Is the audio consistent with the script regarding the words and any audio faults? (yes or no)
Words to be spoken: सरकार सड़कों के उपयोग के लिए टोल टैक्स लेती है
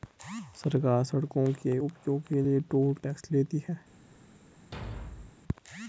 no